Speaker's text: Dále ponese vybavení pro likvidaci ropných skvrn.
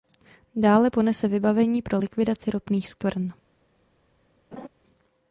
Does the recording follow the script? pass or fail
pass